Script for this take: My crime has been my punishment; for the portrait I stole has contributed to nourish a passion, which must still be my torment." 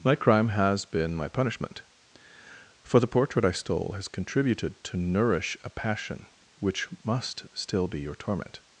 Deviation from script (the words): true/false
true